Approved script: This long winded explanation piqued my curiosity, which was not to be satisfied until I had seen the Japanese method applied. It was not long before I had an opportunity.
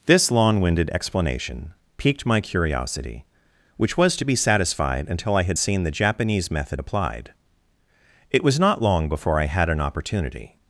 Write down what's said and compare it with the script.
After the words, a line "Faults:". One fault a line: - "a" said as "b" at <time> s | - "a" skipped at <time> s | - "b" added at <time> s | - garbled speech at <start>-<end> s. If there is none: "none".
This long winded explanation piqued my curiosity, which was to be satisfied until I had seen the Japanese method applied. It was not long before I had an opportunity.
Faults:
- "not" skipped at 4.2 s